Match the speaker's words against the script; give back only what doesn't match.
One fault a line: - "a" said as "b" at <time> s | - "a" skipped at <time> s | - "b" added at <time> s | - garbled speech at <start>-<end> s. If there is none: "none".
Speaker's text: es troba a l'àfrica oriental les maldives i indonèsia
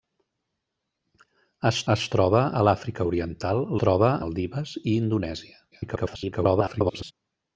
- "es" added at 2.0 s
- "les" said as "troba" at 3.8 s
- garbled speech at 5.7-7.1 s